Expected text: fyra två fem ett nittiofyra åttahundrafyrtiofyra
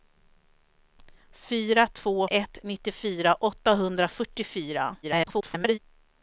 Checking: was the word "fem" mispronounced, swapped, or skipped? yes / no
yes